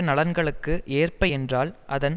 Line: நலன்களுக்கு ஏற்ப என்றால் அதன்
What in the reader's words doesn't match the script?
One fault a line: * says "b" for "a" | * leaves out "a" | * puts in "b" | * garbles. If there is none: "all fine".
all fine